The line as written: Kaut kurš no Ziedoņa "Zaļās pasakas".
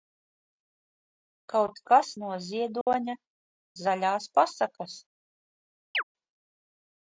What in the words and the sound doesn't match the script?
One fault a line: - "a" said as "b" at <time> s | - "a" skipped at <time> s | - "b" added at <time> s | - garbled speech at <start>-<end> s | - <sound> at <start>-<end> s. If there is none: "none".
- "kurš" said as "kas" at 1.9 s
- dropout at 2.8-2.9 s
- chirp at 5.9-6.0 s